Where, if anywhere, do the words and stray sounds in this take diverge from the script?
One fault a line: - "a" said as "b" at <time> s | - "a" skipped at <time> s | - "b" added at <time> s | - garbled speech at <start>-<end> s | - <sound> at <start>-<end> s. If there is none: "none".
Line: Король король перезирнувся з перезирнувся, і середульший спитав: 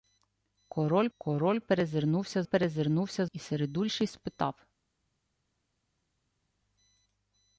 none